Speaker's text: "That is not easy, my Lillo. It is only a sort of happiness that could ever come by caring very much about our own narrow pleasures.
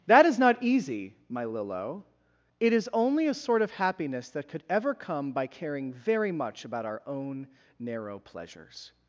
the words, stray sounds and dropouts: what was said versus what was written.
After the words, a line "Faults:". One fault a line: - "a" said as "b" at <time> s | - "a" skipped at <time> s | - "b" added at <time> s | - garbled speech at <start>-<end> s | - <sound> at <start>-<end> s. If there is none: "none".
"That is not easy, my Lillo. It is only a sort of happiness that could ever come by caring very much about our own narrow pleasures.
Faults:
none